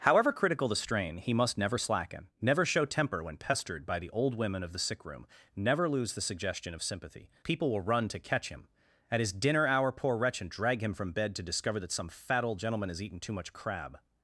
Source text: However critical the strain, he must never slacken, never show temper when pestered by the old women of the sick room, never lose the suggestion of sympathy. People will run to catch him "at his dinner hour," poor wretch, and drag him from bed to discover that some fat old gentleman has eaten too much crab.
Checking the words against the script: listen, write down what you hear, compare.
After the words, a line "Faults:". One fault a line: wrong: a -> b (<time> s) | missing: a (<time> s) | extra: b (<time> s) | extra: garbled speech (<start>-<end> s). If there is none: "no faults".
However critical the strain, he must never slacken, never show temper when pestered by the old women of the sick room, never lose the suggestion of sympathy. People will run to catch him "at his dinner hour," poor wretch, and drag him from bed to discover that some fat old gentleman has eaten too much crab.
Faults:
no faults